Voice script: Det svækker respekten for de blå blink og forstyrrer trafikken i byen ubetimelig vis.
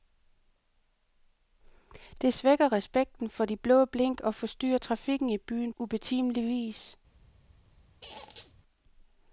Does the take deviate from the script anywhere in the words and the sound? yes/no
yes